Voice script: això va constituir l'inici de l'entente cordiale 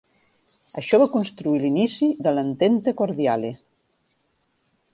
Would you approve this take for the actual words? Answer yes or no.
yes